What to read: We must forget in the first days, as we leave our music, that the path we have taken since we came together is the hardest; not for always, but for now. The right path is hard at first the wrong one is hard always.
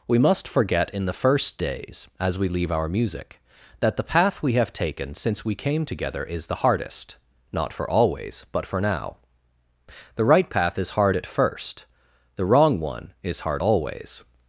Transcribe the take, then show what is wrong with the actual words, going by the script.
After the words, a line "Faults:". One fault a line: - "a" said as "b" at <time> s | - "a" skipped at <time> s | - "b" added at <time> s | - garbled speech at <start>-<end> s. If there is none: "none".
We must forget in the first days, as we leave our music, that the path we have taken since we came together is the hardest; not for always, but for now. The right path is hard at first the wrong one is hard always.
Faults:
none